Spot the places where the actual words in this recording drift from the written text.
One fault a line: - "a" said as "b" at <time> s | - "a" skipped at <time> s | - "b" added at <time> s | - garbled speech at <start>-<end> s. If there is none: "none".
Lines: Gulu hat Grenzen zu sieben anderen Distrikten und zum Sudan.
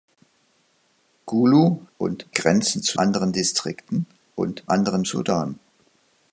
- "hat" said as "und" at 2.0 s
- "sieben" skipped at 3.0 s
- "zum" said as "anderen" at 4.7 s